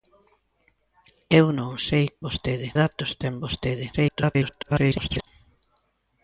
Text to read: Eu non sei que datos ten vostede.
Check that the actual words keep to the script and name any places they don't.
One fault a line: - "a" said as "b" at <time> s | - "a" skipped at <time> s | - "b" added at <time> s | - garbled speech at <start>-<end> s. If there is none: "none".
- "que" said as "vostede" at 2.3 s
- garbled speech at 3.9-5.3 s